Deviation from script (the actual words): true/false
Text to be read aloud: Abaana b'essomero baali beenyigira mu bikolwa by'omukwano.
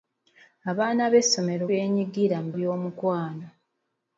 true